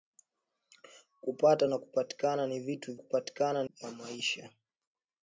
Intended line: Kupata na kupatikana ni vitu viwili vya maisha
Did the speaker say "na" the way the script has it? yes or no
yes